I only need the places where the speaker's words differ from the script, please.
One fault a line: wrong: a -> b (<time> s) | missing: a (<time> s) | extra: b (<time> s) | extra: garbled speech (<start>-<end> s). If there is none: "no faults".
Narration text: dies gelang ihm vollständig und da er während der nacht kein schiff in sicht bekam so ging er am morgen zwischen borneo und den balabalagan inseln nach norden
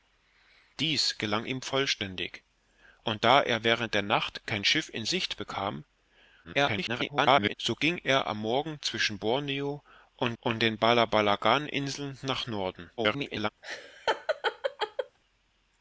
extra: garbled speech (6.4-7.5 s)
extra: und (10.4 s)
extra: garbled speech (13.0-13.5 s)